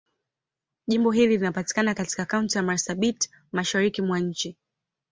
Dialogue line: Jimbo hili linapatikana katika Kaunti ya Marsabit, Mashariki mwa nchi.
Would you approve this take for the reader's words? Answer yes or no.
yes